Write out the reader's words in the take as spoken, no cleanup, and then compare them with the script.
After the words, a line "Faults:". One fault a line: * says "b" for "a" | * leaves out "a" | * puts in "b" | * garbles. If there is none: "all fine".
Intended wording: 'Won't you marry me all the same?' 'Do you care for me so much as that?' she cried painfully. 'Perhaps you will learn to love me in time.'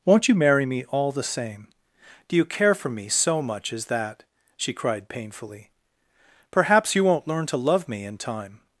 'Won't you marry me all the same?' 'Do you care for me so much as that?' she cried painfully. 'Perhaps you won't learn to love me in time.'
Faults:
* says "won't" for "will"